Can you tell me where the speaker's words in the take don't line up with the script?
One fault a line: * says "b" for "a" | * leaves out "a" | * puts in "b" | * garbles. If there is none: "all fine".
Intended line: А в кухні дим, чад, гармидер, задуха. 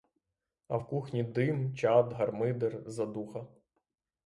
all fine